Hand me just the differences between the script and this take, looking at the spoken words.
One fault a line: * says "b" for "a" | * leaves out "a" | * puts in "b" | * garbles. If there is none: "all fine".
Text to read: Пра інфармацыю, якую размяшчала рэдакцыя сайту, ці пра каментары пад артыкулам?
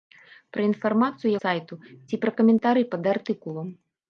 * leaves out "якую размяшчала рэдакцыя"